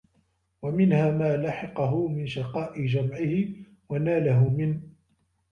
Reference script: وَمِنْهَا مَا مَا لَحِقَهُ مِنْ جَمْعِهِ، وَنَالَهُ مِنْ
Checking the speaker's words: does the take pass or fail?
fail